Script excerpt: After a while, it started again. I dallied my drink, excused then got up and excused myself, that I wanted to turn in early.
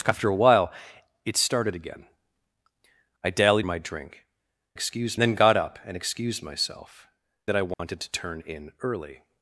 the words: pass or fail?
pass